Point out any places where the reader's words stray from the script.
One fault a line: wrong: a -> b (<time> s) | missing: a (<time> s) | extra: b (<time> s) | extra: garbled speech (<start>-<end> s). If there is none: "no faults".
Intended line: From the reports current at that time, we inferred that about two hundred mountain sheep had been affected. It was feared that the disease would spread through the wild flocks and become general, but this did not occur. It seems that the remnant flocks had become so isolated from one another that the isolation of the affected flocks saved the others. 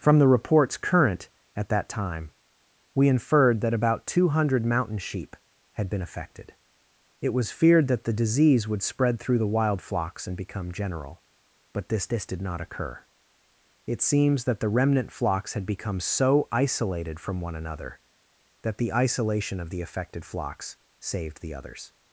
extra: this (12.1 s)